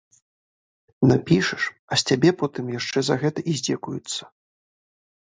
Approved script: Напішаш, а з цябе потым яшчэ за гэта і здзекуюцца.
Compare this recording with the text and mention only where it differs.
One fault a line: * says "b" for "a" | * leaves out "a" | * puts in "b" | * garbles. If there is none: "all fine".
all fine